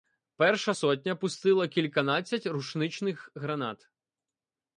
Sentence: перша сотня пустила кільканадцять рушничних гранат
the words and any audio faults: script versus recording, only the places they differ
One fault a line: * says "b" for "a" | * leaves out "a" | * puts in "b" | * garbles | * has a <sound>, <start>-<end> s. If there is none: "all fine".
all fine